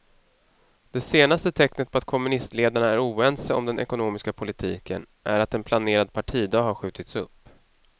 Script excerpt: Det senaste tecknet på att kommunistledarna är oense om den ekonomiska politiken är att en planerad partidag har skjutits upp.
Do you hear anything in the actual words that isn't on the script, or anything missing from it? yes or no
no